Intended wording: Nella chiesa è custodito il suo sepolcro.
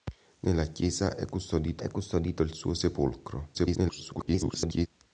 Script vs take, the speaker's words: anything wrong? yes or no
yes